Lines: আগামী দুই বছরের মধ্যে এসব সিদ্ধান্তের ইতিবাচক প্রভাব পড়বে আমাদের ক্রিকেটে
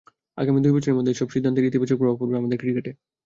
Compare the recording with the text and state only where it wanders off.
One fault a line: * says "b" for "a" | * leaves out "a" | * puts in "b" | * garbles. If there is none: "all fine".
all fine